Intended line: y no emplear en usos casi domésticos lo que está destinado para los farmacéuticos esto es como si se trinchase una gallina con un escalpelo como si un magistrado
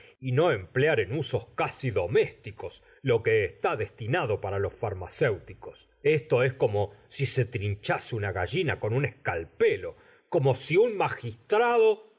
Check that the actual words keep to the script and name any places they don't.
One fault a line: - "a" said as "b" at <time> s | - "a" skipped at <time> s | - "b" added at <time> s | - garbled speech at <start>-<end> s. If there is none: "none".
none